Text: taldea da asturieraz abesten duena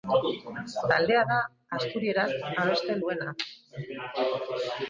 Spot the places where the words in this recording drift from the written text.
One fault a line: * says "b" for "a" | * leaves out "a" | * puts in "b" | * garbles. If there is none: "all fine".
all fine